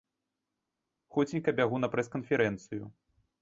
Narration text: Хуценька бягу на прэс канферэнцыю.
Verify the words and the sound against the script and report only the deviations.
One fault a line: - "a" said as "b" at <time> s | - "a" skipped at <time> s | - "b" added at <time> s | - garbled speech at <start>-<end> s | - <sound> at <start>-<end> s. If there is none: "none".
none